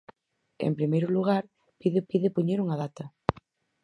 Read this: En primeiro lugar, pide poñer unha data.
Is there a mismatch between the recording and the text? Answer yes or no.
yes